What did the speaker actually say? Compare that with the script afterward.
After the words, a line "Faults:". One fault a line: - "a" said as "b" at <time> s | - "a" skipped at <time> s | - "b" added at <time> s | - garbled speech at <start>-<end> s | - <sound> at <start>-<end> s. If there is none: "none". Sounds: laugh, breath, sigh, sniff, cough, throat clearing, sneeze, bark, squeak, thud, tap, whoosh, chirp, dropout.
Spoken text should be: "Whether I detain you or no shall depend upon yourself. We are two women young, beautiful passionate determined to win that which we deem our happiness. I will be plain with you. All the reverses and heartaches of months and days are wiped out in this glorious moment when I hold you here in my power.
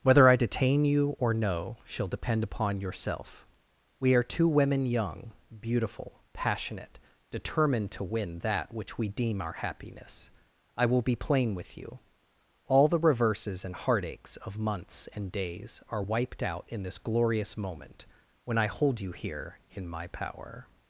"Whether I detain you or no shall depend upon yourself. We are two women young, beautiful passionate determined to win that which we deem our happiness. I will be plain with you. All the reverses and heartaches of months and days are wiped out in this glorious moment when I hold you here in my power.
Faults:
none